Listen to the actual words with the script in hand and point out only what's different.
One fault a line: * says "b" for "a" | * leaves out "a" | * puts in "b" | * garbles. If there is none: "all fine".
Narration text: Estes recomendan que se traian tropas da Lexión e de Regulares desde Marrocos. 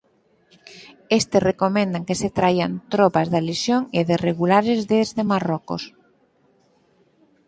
all fine